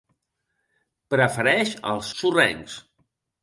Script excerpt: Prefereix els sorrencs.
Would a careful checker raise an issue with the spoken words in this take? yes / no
no